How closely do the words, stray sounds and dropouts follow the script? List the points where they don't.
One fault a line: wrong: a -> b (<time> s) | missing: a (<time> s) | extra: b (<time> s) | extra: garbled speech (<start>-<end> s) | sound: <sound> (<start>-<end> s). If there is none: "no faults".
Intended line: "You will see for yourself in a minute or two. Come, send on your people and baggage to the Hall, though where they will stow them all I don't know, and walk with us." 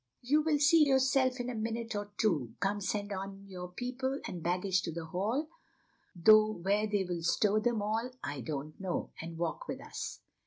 missing: for (0.8 s)